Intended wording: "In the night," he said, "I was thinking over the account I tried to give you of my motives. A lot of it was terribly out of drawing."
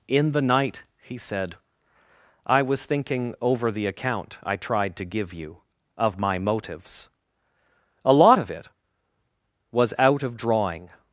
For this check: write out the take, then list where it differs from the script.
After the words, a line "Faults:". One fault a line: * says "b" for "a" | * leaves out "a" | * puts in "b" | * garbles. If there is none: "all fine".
"In the night," he said, "I was thinking over the account I tried to give you of my motives. A lot of it was out of drawing."
Faults:
* leaves out "terribly"